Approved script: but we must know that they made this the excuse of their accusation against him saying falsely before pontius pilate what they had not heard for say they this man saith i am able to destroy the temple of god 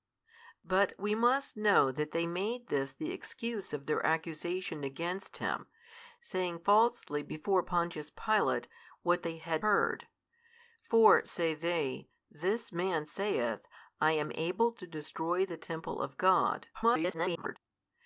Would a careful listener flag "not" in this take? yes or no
yes